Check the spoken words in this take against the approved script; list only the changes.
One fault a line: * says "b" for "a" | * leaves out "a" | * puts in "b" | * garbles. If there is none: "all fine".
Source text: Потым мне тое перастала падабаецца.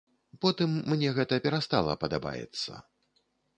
* says "гэта" for "тое"